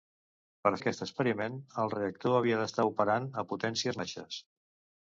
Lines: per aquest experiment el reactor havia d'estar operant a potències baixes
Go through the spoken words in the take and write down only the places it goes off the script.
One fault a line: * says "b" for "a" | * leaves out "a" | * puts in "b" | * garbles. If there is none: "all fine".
all fine